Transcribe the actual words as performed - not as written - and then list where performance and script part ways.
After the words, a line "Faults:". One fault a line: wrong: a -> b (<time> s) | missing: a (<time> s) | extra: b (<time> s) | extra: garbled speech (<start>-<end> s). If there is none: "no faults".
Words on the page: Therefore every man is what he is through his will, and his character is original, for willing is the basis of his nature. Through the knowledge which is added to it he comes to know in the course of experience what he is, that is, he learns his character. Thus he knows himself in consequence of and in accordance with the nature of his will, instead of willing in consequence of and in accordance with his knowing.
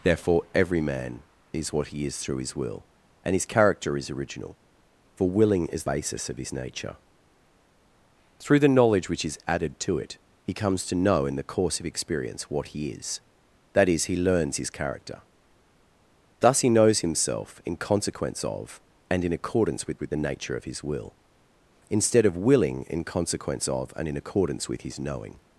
Therefore every man is what he is through his will, and his character is original, for willing is basis of his nature. Through the knowledge which is added to it he comes to know in the course of experience what he is, that is, he learns his character. Thus he knows himself in consequence of and in accordance with with the nature of his will, instead of willing in consequence of and in accordance with his knowing.
Faults:
missing: the (5.8 s)
extra: with (20.0 s)